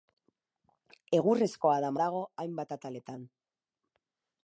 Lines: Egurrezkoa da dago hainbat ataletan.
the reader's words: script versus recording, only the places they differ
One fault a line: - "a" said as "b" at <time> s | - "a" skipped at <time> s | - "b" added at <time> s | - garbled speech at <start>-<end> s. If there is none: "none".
none